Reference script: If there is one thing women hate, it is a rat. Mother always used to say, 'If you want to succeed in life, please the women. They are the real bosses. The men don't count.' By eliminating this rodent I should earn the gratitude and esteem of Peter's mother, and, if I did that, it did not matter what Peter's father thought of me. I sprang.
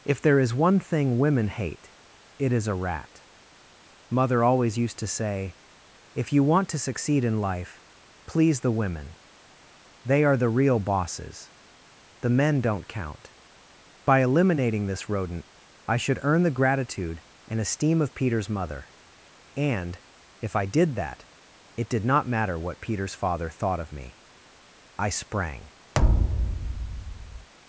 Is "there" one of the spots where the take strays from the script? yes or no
no